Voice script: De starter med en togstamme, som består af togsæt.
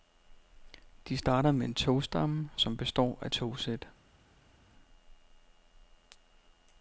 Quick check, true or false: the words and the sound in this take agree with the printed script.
true